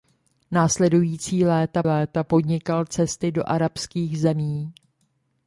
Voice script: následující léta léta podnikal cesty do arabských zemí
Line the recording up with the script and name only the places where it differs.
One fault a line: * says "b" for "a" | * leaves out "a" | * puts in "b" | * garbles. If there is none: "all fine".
all fine